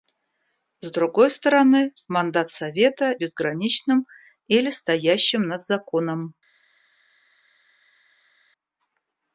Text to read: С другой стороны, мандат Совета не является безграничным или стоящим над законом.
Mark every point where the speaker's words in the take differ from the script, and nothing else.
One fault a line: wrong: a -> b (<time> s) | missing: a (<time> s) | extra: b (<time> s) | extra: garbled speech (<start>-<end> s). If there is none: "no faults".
missing: не является (3.2 s)